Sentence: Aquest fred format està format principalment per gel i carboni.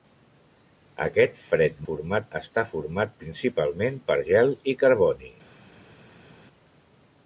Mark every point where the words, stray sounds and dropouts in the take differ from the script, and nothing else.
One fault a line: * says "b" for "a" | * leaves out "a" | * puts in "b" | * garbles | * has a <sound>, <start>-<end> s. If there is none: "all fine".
all fine